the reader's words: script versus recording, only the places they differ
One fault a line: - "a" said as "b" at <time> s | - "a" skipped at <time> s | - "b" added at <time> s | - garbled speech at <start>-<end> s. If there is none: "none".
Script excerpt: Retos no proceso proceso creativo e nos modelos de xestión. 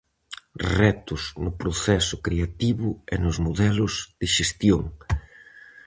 - "proceso" skipped at 2.1 s